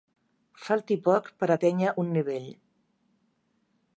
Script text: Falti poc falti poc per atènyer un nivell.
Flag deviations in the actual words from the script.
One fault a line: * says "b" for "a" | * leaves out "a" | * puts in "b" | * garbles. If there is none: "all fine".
* leaves out "falti poc"